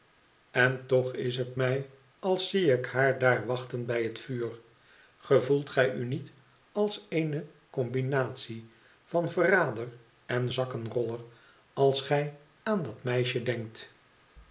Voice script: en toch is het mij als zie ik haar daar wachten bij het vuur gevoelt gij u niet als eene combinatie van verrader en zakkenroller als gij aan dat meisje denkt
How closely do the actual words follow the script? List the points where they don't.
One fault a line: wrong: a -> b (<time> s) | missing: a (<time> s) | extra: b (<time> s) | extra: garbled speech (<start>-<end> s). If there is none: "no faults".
no faults